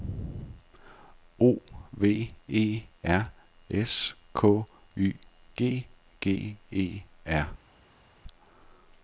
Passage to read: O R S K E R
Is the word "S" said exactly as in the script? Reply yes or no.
yes